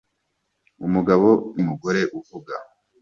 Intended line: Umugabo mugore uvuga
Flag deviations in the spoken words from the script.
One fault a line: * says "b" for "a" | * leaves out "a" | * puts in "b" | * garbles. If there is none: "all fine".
all fine